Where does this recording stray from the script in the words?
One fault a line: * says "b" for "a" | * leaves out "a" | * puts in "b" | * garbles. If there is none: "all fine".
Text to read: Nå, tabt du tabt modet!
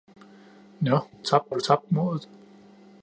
all fine